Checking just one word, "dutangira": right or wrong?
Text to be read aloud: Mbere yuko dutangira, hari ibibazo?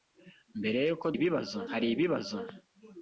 wrong